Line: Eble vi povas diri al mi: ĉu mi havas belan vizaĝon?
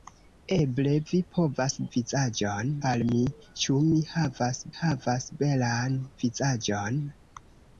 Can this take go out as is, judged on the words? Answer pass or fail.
fail